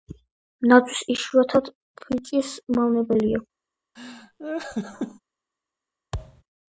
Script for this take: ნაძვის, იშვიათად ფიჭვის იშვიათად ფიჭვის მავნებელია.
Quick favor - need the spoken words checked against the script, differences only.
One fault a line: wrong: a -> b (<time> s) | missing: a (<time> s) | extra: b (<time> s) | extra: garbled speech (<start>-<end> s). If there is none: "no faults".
missing: იშვიათად ფიჭვის (2.5 s)